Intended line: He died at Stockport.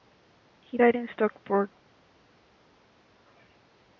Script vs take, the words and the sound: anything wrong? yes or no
yes